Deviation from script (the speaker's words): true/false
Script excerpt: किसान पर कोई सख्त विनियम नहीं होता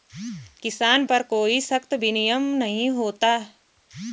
false